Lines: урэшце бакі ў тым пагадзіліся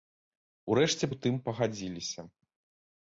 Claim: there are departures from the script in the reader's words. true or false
true